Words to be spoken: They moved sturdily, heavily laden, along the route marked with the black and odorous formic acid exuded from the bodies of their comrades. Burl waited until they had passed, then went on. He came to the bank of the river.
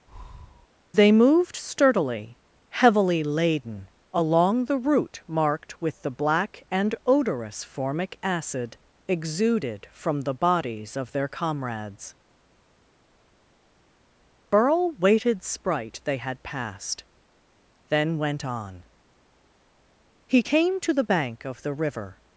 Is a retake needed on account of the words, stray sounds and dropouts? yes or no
yes